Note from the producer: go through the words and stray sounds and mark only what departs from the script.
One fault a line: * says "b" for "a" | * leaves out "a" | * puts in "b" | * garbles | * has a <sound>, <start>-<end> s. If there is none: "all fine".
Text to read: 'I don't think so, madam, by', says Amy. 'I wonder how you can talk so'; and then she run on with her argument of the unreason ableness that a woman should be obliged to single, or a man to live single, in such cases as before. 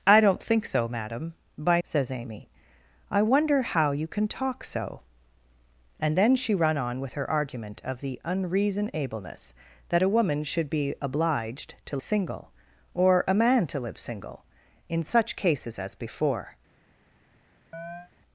* has a chirp, 17.7-18.1 s